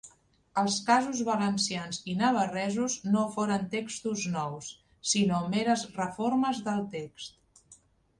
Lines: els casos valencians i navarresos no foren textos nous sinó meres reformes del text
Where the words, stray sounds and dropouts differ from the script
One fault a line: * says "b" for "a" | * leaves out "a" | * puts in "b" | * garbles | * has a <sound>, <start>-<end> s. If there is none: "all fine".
all fine